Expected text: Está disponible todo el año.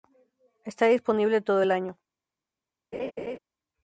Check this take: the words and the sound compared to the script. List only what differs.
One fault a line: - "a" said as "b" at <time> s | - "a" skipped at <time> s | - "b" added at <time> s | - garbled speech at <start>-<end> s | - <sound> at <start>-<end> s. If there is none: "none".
- laugh at 2.9-3.4 s